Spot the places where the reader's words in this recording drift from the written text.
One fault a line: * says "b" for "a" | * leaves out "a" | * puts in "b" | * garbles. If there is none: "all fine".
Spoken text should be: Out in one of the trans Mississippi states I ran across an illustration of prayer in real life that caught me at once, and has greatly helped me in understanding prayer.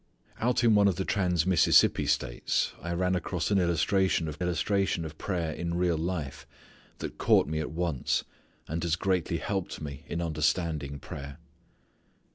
* puts in "illustration of"